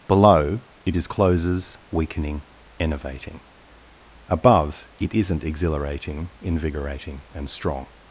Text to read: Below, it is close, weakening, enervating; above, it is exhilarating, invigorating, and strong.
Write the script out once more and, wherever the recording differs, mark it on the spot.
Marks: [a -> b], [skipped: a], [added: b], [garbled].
Below, it is [close, -> closes] weakening, enervating; above, it [is -> isn't] exhilarating, invigorating, and strong.